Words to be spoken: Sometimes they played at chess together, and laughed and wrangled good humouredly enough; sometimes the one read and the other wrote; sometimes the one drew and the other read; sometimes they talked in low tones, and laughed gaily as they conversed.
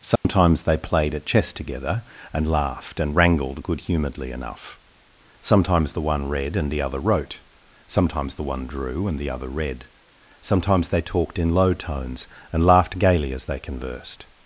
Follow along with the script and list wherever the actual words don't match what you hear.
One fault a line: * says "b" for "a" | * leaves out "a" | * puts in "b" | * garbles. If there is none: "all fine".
all fine